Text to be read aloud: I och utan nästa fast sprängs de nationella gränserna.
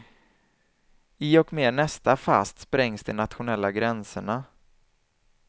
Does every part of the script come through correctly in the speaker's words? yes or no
no